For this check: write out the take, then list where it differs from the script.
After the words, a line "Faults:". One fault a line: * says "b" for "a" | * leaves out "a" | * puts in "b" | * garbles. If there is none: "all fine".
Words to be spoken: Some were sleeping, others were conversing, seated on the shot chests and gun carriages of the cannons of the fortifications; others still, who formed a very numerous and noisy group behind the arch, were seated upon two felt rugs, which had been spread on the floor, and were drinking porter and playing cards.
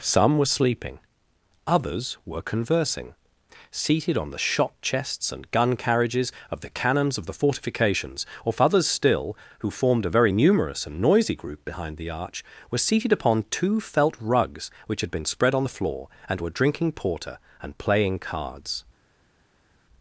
Some were sleeping, others were conversing, seated on the shot chests and gun carriages of the cannons of the fortifications; or others still, who formed a very numerous and noisy group behind the arch, were seated upon two felt rugs, which had been spread on the floor, and were drinking porter and playing cards.
Faults:
* puts in "or"